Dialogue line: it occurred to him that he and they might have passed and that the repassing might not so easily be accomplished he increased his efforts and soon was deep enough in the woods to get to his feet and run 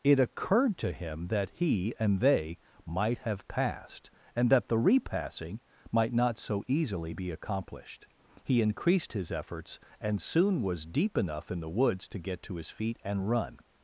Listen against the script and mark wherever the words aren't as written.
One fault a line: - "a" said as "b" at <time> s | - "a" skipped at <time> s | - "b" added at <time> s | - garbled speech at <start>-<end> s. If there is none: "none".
none